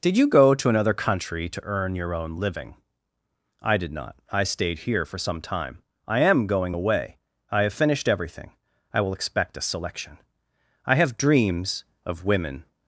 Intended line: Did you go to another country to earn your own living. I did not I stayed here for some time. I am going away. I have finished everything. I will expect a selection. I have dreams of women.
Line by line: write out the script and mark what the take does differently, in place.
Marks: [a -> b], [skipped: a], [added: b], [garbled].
Did you go to another country to earn your own living. I did not I stayed here for some time. I am going away. I have finished everything. I will expect a selection. I have dreams of women.